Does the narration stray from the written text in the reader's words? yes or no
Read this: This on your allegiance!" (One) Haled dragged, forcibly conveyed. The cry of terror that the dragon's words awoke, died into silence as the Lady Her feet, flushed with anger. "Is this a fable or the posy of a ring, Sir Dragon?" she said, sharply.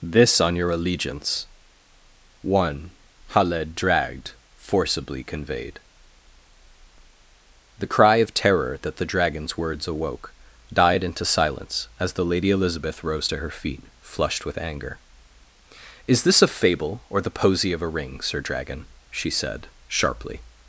yes